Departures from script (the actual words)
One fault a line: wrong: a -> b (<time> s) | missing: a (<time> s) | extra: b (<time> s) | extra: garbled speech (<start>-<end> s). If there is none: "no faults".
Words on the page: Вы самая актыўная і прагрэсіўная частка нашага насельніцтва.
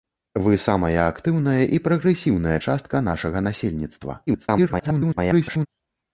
extra: garbled speech (4.3-5.7 s)